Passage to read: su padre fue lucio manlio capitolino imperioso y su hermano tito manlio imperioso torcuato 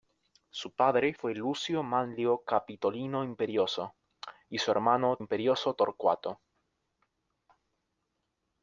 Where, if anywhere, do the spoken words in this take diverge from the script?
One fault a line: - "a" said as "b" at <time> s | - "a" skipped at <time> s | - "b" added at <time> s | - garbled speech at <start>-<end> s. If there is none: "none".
- "tito manlio" skipped at 5.2 s